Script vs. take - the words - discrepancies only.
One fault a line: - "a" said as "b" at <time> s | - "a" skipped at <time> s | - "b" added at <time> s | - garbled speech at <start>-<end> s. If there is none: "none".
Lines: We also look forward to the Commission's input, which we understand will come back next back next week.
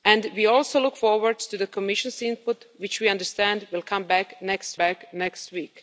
none